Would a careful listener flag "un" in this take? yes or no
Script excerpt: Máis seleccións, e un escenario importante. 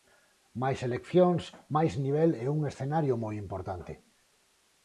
no